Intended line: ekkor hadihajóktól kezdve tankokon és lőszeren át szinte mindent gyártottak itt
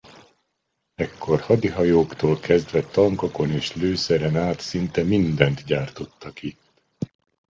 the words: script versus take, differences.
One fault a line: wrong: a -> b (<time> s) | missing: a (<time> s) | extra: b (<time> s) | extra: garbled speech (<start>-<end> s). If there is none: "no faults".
no faults